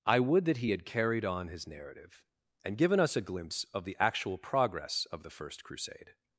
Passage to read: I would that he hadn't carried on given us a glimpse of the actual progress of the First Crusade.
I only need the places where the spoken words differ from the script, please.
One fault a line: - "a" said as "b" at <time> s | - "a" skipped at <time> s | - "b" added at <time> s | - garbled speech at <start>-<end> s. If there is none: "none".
- "hadn't" said as "had" at 0.7 s
- "his narrative and" added at 1.5 s